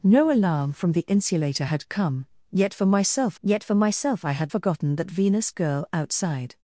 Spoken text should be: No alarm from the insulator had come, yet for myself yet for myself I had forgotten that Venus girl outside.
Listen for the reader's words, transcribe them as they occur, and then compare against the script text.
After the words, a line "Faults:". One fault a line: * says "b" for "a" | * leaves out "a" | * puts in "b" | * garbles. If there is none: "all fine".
No alarm from the insulator had come, yet for myself yet for myself I had forgotten that Venus girl outside.
Faults:
all fine